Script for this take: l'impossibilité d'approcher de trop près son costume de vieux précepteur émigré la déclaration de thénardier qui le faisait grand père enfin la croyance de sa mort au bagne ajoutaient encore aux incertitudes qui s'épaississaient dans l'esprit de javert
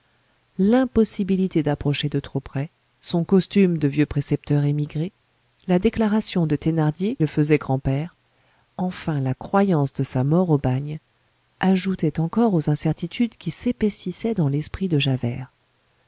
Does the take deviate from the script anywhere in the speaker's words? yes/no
yes